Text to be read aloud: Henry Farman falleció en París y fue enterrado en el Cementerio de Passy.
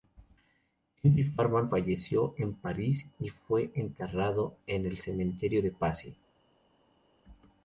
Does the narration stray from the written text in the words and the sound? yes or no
no